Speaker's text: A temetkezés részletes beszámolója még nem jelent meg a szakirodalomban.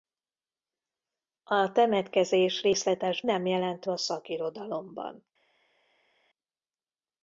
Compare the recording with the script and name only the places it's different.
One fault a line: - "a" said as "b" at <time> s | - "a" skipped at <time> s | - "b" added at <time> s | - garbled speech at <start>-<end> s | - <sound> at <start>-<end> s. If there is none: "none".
- "beszámolója még" skipped at 3.2 s
- "meg" skipped at 3.9 s